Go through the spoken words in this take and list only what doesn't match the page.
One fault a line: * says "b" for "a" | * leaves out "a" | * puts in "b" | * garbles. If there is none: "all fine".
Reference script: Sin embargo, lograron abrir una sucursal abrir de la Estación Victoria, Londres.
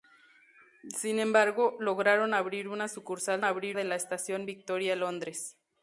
all fine